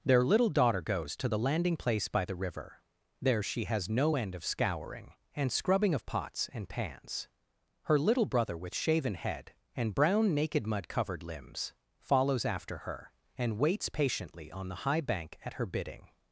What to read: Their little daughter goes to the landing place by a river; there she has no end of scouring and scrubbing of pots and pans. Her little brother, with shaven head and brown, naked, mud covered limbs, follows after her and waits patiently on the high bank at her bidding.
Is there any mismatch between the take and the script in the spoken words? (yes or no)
yes